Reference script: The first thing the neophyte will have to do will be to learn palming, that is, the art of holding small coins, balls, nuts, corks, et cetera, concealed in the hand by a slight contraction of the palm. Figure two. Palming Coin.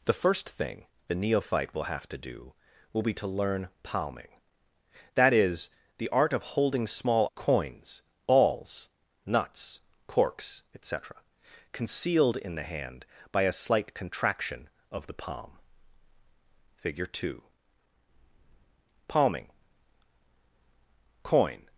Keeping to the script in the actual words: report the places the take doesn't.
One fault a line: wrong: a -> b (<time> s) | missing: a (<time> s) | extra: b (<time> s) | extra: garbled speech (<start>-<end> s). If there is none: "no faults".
no faults